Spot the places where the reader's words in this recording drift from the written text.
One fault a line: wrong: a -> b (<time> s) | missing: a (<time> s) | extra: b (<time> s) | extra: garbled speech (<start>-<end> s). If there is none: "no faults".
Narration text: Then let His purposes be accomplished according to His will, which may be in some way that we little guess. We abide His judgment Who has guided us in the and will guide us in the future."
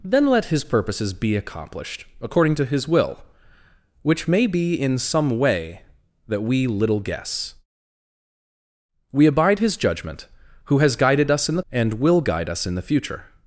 no faults